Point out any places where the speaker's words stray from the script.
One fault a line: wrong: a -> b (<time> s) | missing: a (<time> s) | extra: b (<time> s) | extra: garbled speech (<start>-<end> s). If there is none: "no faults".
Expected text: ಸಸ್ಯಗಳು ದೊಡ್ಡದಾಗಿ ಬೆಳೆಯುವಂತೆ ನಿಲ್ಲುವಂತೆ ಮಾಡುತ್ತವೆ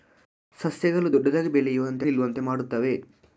no faults